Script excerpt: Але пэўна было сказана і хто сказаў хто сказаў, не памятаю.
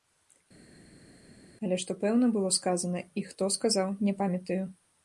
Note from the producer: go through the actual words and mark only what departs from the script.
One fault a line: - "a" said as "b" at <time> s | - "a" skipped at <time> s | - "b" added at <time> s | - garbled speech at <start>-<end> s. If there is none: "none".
- "што" added at 1.8 s
- "хто сказаў" skipped at 4.0 s